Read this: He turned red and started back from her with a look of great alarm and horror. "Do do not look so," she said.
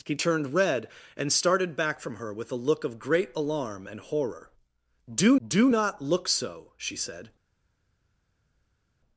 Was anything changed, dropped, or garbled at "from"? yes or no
no